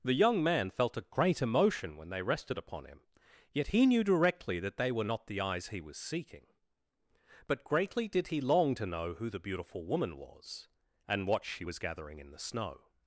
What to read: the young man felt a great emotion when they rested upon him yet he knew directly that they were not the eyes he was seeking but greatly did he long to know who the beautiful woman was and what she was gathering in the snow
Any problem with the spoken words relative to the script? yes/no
no